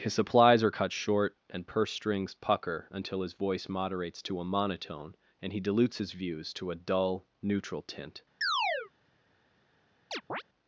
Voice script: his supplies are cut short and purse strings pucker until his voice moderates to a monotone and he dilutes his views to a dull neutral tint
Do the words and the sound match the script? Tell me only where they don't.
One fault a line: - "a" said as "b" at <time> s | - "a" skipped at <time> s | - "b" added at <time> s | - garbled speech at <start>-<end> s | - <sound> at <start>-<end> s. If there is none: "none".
- chirp at 8.4-8.9 s
- chirp at 10.1-10.4 s